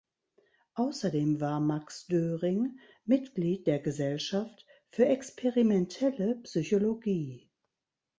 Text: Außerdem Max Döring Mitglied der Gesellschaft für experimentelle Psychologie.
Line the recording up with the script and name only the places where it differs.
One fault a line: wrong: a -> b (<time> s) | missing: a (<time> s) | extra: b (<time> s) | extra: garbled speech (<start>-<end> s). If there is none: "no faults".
extra: war (1.4 s)